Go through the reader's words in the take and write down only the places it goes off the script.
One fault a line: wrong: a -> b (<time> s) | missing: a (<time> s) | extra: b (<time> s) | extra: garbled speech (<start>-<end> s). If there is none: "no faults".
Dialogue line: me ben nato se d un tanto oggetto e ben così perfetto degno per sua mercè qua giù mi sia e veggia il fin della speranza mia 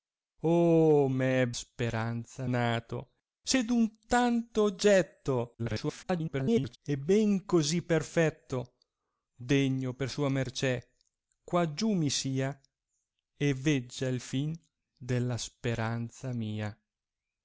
wrong: ben -> speranza (1.5 s)
extra: garbled speech (5.6-6.8 s)